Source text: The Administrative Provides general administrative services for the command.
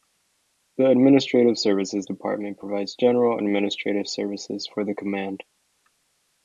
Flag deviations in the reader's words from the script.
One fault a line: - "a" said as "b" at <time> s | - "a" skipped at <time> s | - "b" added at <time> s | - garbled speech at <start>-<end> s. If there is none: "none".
- "Services Department" added at 1.6 s